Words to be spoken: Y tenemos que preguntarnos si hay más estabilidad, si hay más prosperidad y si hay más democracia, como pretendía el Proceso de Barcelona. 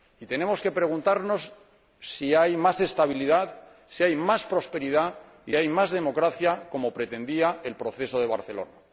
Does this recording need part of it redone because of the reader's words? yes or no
yes